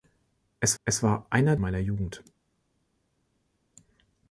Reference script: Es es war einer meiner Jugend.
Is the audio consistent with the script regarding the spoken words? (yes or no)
yes